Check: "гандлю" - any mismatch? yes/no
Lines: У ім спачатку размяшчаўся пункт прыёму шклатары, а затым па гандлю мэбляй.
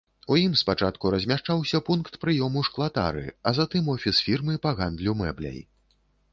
no